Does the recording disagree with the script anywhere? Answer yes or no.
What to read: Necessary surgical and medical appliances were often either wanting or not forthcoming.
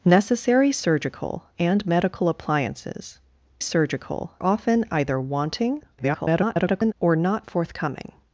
yes